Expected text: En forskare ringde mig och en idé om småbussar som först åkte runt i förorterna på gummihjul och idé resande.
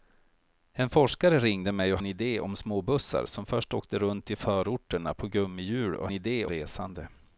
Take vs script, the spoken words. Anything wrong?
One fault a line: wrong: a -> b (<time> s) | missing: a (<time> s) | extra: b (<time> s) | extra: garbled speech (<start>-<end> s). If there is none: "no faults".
no faults